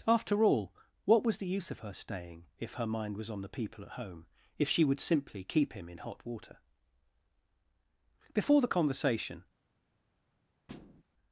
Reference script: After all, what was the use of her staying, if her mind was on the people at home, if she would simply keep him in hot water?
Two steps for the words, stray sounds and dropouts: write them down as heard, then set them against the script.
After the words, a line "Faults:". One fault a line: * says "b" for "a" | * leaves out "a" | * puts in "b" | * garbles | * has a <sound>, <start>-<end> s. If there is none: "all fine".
After all, what was the use of her staying, if her mind was on the people at home, if she would simply keep him in hot water? Before the conversation
Faults:
* puts in "Before the conversation"
* has a thud, 10.7-11.0 s